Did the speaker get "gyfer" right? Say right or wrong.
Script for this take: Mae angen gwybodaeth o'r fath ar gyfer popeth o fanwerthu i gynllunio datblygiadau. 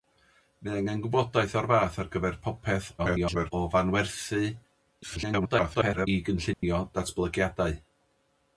right